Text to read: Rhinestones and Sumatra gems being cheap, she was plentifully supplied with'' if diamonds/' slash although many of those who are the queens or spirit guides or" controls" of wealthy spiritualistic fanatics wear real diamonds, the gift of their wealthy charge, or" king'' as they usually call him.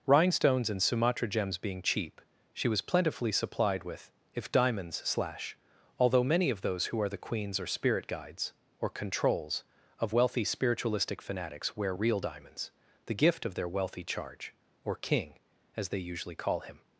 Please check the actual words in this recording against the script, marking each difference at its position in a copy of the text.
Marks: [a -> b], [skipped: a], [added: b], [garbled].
Rhinestones and Sumatra gems being cheap, she was plentifully supplied with'' if diamonds/' slash although many of those who are the queens or spirit guides or" controls" of wealthy spiritualistic fanatics wear real diamonds, the gift of their wealthy charge, or" king'' as they usually call him.